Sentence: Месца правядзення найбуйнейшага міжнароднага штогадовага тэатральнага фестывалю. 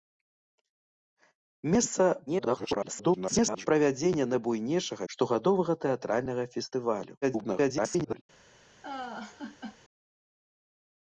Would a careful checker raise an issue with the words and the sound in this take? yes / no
yes